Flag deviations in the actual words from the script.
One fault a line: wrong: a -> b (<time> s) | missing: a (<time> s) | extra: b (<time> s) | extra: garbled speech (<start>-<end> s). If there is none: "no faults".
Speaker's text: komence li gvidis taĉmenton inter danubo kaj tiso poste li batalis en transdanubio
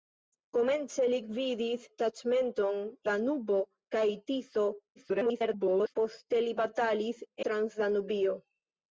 missing: inter (2.8 s)
extra: garbled speech (5.0-5.9 s)
missing: en (7.3 s)